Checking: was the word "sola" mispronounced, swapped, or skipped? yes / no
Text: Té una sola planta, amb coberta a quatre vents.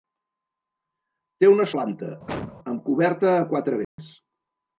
yes